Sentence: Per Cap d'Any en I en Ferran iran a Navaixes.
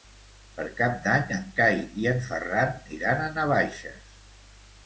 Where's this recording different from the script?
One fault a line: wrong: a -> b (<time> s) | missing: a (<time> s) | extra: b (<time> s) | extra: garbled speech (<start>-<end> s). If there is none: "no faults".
extra: Cai (1.6 s)